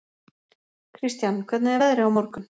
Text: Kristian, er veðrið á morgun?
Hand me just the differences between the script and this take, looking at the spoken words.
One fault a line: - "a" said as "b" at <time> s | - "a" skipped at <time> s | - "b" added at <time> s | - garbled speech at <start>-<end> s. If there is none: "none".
- "hvernig" added at 1.5 s